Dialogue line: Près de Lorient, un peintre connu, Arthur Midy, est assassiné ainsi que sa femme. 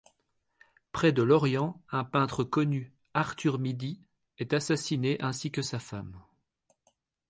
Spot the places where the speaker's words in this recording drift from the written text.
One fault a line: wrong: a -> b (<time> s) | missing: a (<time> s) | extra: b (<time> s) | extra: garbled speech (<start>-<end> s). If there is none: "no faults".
no faults